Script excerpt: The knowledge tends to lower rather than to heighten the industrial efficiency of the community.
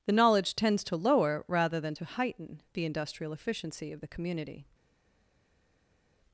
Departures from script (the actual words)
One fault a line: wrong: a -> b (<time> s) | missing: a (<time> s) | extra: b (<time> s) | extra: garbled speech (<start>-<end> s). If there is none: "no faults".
no faults